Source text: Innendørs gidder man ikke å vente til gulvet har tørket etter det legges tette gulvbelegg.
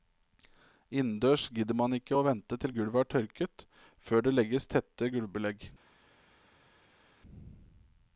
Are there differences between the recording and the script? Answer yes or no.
yes